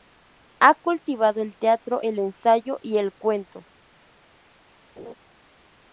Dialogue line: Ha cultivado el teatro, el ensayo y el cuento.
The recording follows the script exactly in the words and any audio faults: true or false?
false